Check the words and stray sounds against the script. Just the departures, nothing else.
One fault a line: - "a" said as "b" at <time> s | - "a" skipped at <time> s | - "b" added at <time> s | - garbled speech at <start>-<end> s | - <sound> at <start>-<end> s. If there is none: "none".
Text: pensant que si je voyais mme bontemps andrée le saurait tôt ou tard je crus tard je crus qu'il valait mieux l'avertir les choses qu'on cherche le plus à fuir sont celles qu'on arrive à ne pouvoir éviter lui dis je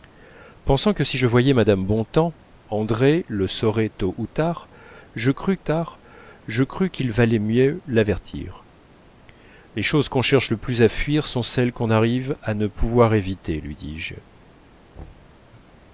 - thud at 15.0-15.4 s